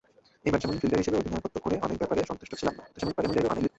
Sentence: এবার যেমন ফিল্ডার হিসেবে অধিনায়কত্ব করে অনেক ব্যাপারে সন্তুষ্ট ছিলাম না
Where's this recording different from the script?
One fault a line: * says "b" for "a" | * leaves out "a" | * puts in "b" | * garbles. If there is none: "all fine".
* garbles